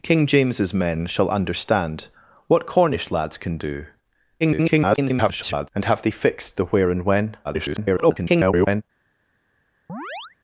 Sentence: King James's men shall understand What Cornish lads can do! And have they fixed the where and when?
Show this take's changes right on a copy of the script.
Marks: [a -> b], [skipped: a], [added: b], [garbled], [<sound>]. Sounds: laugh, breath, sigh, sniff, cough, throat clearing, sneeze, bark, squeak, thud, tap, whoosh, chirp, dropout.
King James's men shall understand What Cornish lads can do! [garbled] And have they fixed the where and when? [garbled] [chirp]